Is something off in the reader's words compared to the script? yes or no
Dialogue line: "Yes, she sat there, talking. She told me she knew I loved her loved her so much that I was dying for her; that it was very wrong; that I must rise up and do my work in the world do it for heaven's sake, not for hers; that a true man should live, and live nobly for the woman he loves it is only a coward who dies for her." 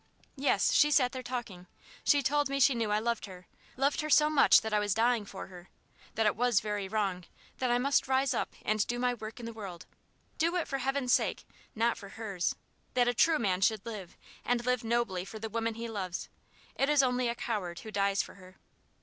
no